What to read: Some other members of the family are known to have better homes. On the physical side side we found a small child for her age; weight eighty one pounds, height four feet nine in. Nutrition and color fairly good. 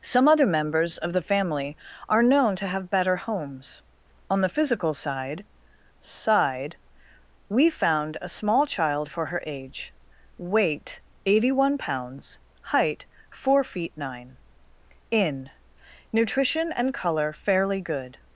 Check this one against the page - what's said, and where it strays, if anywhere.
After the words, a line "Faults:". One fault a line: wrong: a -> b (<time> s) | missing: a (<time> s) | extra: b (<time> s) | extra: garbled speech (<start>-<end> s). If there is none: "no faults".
Some other members of the family are known to have better homes. On the physical side side we found a small child for her age; weight eighty one pounds, height four feet nine in. Nutrition and color fairly good.
Faults:
no faults